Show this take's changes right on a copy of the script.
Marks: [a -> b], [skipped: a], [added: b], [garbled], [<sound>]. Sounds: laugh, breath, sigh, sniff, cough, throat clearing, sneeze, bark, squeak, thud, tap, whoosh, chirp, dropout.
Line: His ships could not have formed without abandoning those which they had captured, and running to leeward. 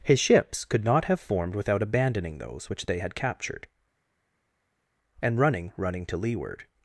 His ships could not have formed without abandoning those which they had captured, and running [added: running] to leeward.